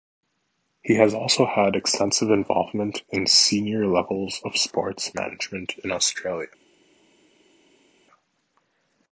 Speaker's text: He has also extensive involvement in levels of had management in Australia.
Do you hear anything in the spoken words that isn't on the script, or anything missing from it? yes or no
yes